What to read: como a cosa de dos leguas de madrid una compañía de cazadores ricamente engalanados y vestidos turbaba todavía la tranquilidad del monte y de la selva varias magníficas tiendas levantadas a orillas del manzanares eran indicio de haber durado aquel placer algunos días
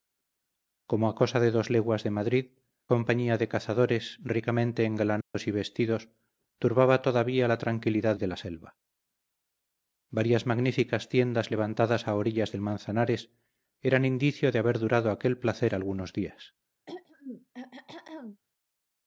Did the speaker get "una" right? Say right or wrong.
wrong